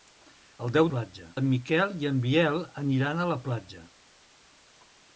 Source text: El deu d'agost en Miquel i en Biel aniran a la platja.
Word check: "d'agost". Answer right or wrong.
wrong